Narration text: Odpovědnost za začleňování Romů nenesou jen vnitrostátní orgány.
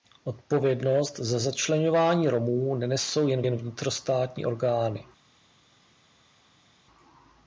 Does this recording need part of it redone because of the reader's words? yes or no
yes